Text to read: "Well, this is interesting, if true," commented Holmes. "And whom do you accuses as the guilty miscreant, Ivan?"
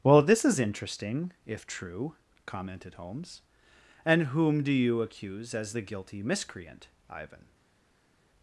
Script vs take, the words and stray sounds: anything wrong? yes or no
yes